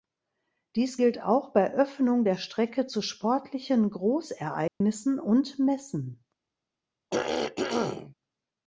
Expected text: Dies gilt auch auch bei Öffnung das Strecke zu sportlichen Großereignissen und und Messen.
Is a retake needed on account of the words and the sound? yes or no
yes